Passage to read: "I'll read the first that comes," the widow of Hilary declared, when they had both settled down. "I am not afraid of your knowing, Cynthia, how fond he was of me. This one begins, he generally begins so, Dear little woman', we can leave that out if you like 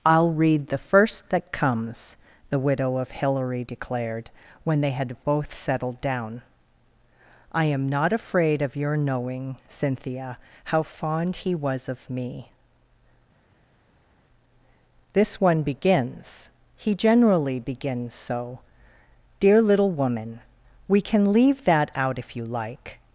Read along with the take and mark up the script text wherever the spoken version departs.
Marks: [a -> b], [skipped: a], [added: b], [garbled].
"I'll read the first that comes," the widow of Hilary declared, when they had both settled down. "I am not afraid of your knowing, Cynthia, how fond he was of me. This one begins, he generally begins so, Dear little woman', we can leave that out if you like